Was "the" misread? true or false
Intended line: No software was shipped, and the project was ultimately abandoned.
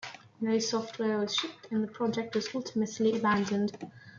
false